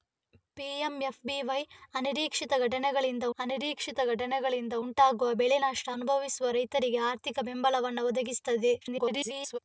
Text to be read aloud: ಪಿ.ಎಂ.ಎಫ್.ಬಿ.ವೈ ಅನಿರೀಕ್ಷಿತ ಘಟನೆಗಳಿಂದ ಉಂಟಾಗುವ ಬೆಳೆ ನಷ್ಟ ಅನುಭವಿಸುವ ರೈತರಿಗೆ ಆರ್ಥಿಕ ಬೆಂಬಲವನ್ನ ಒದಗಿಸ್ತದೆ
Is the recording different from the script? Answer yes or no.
yes